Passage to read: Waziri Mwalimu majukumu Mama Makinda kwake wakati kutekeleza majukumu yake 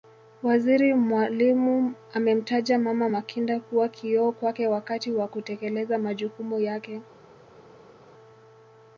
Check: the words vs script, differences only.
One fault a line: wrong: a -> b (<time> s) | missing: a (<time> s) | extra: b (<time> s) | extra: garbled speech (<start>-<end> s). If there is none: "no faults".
wrong: majukumu -> amemtaja (2.1 s)
extra: kuwa kioo (3.6 s)
extra: wa (5.1 s)